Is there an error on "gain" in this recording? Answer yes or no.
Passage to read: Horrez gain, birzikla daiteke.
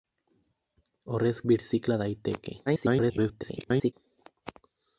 yes